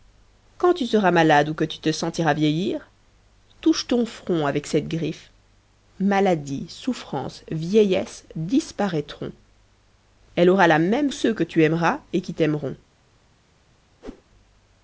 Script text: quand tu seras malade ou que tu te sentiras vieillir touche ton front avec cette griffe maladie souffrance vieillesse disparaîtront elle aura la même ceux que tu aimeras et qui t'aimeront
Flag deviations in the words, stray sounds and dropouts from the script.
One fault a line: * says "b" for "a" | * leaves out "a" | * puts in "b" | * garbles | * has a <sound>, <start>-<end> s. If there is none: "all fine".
* has a whoosh, 14.0-14.2 s